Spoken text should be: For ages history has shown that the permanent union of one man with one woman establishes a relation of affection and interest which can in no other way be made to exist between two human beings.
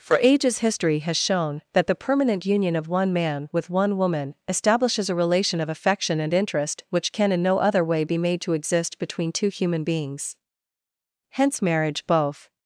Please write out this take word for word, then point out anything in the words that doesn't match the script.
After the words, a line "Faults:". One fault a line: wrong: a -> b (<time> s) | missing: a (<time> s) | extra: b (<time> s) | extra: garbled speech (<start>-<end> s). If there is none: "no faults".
For ages history has shown that the permanent union of one man with one woman establishes a relation of affection and interest which can in no other way be made to exist between two human beings. Hence marriage, both
Faults:
extra: Hence marriage both (11.3 s)